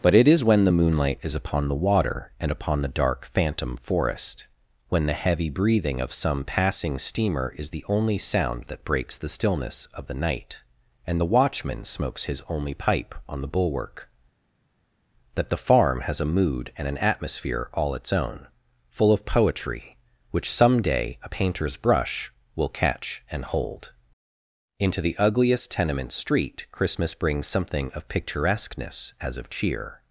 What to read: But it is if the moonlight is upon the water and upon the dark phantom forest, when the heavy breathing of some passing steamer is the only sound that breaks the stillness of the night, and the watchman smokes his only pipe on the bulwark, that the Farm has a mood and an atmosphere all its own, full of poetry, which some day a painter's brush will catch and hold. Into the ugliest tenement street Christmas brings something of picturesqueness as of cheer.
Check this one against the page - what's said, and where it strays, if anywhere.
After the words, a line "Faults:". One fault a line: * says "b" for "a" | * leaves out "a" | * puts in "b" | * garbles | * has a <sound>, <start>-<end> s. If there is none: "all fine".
But it is when the moonlight is upon the water and upon the dark phantom forest, when the heavy breathing of some passing steamer is the only sound that breaks the stillness of the night, and the watchman smokes his only pipe on the bulwark, that the Farm has a mood and an atmosphere all its own, full of poetry, which some day a painter's brush will catch and hold. Into the ugliest tenement street Christmas brings something of picturesqueness as of cheer.
Faults:
* says "when" for "if"